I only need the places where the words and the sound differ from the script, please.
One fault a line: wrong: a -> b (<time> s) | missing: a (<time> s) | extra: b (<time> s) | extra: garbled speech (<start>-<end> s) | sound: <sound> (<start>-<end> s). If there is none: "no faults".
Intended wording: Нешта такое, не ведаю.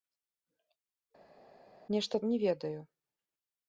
missing: такое (2.2 s)